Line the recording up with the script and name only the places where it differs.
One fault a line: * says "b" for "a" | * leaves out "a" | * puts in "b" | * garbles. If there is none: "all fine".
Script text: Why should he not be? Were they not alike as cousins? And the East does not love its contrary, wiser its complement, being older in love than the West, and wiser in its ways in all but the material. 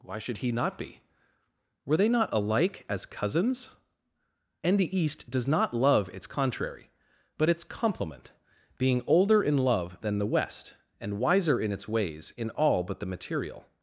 * says "but" for "wiser"